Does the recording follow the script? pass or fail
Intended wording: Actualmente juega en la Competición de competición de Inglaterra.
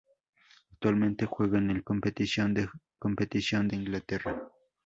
pass